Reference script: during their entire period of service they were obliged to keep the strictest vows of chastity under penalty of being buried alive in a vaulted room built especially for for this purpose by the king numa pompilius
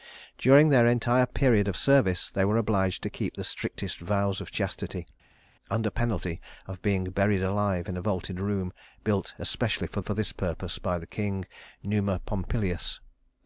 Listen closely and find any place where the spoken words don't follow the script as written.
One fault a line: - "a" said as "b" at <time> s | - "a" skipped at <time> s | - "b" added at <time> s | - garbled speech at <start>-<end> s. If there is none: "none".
none